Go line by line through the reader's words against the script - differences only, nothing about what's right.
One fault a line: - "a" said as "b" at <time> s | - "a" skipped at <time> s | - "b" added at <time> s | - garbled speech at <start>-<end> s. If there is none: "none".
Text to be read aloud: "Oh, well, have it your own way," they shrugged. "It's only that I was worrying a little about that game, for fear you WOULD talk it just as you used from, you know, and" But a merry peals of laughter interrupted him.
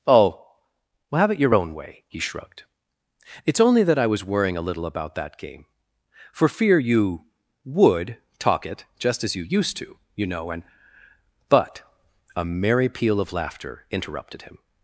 - "they" said as "he" at 2.1 s
- "from" said as "to" at 9.8 s
- "peals" said as "peal" at 12.9 s